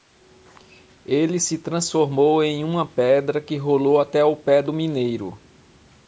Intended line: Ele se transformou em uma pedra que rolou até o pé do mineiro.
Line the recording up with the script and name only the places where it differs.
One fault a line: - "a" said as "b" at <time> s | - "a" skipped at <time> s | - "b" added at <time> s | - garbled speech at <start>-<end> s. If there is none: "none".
none